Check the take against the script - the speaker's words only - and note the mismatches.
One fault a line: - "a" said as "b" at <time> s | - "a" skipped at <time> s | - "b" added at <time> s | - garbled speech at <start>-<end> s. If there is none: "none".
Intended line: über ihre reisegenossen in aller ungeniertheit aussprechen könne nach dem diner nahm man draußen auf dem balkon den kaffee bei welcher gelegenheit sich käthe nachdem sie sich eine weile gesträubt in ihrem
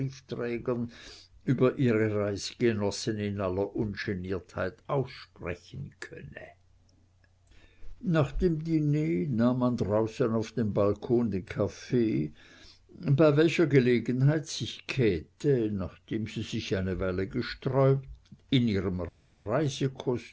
none